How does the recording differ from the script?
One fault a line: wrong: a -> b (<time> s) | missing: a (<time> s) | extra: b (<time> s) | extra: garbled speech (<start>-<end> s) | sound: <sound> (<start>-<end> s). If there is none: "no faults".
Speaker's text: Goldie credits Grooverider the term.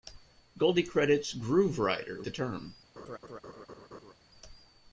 sound: laugh (3.0-4.1 s)